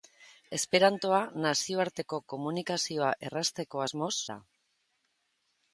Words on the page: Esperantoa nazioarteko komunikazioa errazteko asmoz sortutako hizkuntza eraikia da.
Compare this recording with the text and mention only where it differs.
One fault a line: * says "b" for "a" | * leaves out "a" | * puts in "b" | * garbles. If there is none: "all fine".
* leaves out "sortutako hizkuntza eraikia"